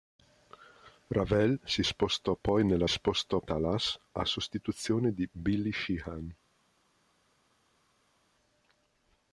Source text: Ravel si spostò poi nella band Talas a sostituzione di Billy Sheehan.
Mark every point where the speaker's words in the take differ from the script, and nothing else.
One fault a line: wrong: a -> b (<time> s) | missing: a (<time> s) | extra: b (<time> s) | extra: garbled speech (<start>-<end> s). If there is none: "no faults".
wrong: band -> spostò (2.9 s)